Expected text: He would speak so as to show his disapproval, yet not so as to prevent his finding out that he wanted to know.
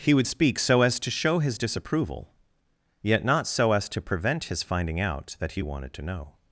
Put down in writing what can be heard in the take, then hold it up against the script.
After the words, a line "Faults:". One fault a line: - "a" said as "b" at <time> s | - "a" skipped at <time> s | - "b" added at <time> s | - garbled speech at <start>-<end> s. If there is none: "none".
He would speak so as to show his disapproval, yet not so as to prevent his finding out that he wanted to know.
Faults:
none